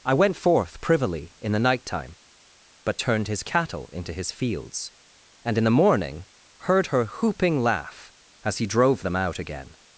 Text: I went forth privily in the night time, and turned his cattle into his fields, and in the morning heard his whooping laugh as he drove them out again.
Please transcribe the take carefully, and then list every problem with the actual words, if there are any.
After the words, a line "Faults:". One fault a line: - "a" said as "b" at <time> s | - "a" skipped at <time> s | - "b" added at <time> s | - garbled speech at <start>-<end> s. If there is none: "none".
I went forth privily in the night time, but turned his cattle into his fields, and in the morning heard her whooping laugh as he drove them out again.
Faults:
- "and" said as "but" at 2.9 s
- "his" said as "her" at 6.9 s